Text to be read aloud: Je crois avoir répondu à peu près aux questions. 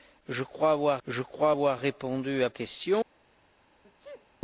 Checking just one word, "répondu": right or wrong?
wrong